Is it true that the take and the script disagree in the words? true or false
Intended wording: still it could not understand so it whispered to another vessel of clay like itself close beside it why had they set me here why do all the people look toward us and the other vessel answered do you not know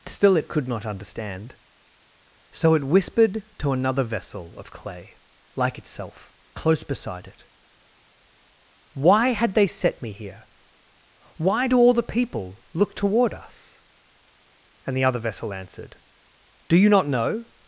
false